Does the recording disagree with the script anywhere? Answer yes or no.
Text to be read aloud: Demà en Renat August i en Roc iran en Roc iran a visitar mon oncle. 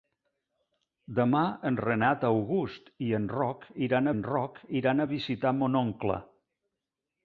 no